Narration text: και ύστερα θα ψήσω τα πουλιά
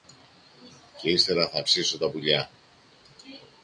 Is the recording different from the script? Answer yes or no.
no